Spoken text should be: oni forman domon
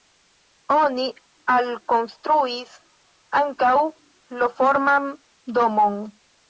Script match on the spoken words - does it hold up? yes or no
no